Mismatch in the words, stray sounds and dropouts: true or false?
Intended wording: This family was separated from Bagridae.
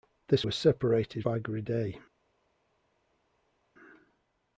true